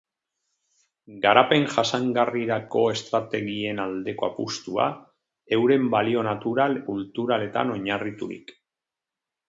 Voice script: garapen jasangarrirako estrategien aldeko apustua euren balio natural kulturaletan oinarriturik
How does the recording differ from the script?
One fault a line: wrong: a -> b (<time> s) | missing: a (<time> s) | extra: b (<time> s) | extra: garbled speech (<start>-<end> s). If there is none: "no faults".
no faults